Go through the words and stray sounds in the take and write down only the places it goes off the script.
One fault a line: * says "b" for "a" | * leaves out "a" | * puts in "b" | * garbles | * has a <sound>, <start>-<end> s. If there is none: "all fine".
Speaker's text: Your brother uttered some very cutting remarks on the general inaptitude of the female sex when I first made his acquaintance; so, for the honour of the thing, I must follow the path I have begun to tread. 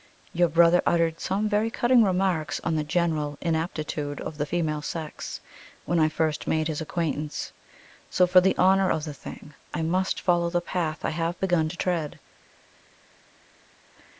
all fine